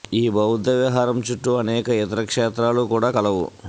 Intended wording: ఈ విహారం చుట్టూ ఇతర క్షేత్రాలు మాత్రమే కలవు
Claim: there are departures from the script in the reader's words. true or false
true